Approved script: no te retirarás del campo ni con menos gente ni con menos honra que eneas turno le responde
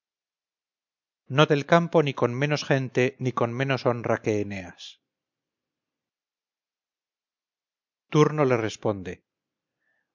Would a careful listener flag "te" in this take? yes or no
yes